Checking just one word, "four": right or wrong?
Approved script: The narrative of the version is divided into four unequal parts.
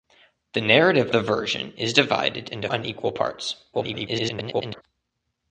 wrong